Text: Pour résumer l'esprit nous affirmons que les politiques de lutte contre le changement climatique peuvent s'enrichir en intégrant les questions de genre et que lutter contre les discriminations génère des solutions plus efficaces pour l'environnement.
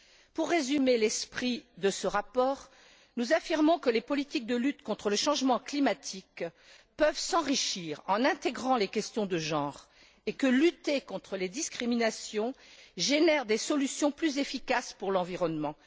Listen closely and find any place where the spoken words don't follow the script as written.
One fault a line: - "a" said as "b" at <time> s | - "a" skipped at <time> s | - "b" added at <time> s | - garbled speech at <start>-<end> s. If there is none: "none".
- "de ce rapport" added at 1.8 s